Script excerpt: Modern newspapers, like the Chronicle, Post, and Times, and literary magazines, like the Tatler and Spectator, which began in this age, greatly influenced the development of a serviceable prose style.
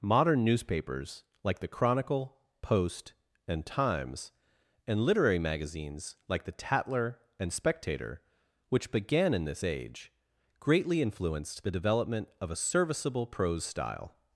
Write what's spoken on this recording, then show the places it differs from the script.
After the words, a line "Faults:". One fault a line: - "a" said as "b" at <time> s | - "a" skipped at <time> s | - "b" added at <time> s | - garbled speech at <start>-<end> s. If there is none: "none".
Modern newspapers, like the Chronicle, Post, and Times, and literary magazines, like the Tatler and Spectator, which began in this age, greatly influenced the development of a serviceable prose style.
Faults:
none